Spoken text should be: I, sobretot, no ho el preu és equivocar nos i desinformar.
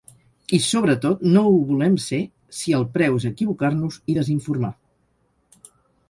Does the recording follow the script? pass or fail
fail